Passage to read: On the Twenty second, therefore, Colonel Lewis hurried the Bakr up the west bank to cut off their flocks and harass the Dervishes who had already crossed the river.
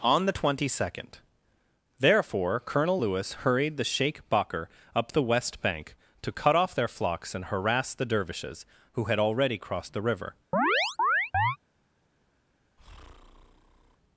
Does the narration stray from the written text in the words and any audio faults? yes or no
yes